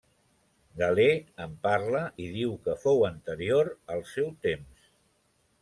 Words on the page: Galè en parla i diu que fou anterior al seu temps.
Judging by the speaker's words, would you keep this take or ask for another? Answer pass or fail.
pass